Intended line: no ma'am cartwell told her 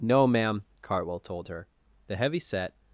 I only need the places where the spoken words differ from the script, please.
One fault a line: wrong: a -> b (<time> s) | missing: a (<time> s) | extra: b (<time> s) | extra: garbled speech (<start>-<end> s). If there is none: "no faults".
extra: the heavy set (2.1 s)